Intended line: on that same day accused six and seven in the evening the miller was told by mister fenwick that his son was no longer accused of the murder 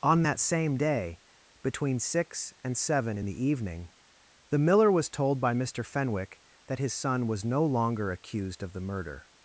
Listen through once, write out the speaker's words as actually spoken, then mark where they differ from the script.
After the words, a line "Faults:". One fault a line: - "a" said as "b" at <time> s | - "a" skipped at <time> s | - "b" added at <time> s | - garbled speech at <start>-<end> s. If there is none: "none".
on that same day between six and seven in the evening the miller was told by mister fenwick that his son was no longer accused of the murder
Faults:
- "accused" said as "between" at 1.6 s